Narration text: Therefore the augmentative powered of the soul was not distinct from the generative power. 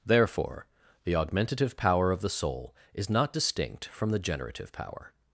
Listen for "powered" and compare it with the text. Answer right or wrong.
wrong